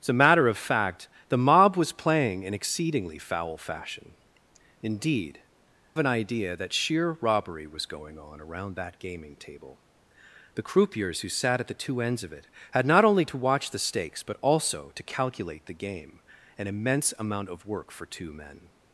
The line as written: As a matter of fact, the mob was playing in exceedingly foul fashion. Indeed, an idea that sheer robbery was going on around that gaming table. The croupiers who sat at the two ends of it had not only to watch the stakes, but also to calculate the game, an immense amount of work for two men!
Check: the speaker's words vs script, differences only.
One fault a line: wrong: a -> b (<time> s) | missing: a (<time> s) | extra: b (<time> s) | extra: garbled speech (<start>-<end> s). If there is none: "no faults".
no faults